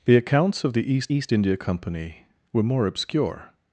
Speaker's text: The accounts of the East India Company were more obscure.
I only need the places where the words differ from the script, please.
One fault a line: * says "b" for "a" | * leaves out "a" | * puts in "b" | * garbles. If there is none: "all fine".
* puts in "East"